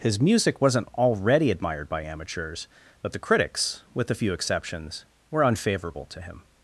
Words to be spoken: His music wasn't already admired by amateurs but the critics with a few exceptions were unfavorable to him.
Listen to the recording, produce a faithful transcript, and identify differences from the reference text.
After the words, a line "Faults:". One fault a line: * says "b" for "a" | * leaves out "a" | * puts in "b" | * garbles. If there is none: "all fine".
His music wasn't already admired by amateurs but the critics with a few exceptions were unfavorable to him.
Faults:
all fine